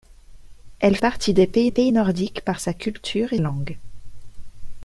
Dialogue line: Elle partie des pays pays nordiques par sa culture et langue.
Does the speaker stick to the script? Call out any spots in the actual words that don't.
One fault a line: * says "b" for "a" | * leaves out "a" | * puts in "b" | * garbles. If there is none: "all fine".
all fine